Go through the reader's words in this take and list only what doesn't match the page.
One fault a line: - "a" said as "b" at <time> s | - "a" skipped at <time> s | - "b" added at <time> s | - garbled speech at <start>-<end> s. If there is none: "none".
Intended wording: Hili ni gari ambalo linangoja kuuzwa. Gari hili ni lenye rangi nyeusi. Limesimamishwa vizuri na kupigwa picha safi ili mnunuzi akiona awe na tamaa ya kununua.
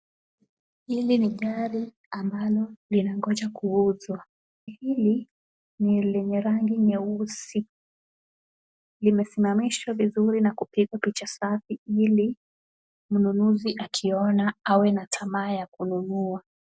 - "Gari" skipped at 4.2 s